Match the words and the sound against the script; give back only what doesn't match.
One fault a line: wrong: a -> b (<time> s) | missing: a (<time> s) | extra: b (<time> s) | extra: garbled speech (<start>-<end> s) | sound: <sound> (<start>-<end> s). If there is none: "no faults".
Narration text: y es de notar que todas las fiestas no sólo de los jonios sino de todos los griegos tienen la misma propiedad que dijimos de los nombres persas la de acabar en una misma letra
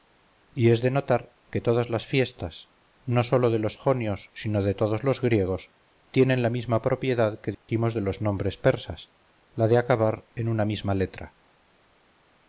sound: dropout (7.5-7.7 s)